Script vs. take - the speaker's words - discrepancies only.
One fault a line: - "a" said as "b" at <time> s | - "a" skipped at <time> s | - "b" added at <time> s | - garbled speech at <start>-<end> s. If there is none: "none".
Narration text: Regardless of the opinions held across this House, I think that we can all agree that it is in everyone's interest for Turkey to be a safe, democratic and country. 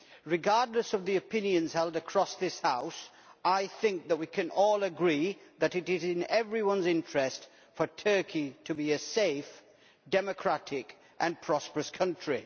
- "prosperous" added at 11.4 s